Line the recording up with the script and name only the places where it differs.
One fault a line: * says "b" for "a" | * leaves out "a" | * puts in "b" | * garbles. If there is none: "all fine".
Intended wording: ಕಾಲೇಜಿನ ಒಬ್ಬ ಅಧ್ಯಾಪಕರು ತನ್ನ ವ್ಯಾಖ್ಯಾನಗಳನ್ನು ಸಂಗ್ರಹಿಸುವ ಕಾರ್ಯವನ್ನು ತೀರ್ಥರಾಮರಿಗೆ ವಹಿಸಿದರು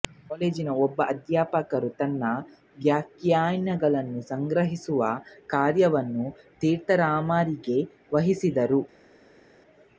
all fine